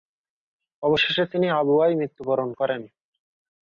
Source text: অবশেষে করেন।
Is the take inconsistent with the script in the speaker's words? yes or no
yes